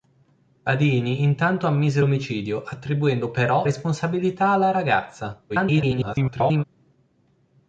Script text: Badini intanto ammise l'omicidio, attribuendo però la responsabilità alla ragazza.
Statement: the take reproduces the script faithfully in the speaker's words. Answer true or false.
false